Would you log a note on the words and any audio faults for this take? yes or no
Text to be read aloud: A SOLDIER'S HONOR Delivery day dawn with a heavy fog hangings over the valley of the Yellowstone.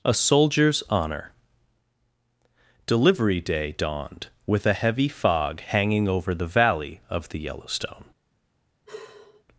yes